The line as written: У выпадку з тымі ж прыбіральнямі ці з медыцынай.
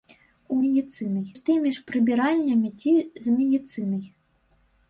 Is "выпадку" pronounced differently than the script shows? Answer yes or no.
yes